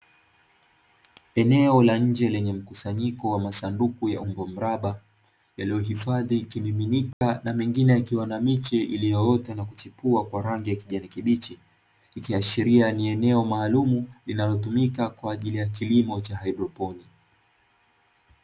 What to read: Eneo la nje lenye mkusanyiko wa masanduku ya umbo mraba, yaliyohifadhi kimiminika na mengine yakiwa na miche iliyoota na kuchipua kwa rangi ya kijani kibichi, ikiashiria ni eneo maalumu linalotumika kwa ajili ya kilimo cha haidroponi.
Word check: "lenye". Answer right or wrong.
right